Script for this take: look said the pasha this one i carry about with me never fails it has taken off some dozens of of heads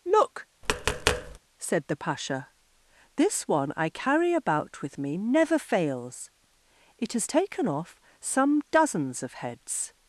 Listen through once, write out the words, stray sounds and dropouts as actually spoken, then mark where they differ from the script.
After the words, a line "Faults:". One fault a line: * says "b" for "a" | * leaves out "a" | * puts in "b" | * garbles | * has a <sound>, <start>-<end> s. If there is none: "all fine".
look said the pasha this one i carry about with me never fails it has taken off some dozens of heads
Faults:
* has a tap, 0.6-1.4 s
* leaves out "of"